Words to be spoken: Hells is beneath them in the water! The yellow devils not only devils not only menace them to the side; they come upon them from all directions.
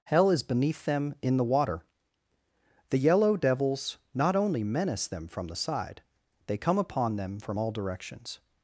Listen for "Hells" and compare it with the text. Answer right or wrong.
wrong